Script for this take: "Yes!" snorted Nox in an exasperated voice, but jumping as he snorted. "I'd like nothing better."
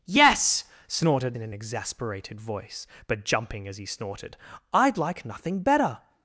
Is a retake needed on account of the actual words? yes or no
yes